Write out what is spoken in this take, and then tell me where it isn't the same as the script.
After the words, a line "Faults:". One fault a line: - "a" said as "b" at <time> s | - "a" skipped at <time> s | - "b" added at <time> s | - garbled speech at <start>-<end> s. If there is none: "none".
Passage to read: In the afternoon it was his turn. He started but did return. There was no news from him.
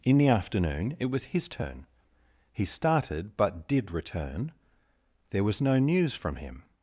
In the afternoon it was his turn. He started but did return. There was no news from him.
Faults:
none